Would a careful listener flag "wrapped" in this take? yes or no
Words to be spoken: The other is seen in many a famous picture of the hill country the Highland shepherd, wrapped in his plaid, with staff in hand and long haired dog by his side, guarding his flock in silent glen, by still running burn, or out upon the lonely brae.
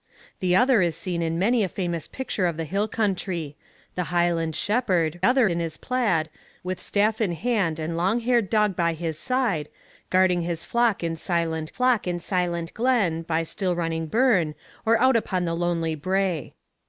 yes